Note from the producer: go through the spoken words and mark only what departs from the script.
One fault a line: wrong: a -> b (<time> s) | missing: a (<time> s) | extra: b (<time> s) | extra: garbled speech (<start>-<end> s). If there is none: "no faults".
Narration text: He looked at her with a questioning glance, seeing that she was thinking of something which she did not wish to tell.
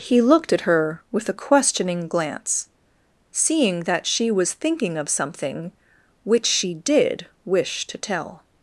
missing: not (7.3 s)